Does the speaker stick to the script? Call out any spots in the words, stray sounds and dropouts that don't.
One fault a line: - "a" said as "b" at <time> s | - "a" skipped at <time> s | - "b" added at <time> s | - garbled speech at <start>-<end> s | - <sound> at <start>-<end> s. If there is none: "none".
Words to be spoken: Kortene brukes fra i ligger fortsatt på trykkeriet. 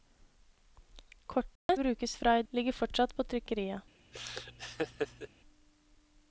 - dropout at 1.6-1.7 s
- laugh at 4.1-5.3 s